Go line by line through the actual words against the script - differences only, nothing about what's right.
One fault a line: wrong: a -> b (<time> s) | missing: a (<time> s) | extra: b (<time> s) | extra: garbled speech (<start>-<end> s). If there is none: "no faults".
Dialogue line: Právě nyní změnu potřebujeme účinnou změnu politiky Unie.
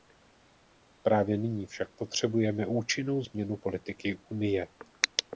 wrong: změnu -> však (1.6 s)